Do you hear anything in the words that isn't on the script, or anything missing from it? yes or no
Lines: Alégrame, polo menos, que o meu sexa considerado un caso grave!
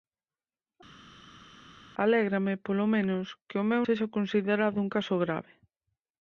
no